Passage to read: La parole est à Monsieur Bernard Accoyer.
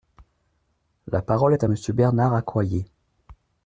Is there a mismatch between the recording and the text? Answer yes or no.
no